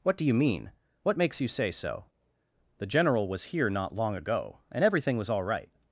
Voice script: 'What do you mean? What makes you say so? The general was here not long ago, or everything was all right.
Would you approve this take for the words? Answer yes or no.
no